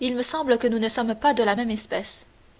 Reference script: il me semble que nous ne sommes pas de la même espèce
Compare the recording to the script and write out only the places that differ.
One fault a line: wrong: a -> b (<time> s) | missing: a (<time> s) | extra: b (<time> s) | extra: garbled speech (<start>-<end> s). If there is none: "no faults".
no faults